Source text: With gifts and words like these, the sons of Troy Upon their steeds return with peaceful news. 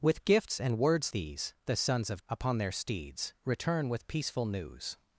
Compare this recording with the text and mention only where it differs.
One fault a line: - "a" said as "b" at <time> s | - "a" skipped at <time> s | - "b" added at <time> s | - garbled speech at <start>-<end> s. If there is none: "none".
- "like" skipped at 1.1 s
- "Troy" skipped at 2.2 s